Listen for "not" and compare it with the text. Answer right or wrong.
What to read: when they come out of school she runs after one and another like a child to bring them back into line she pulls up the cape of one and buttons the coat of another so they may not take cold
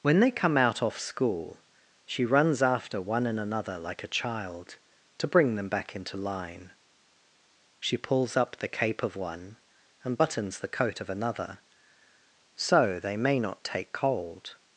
right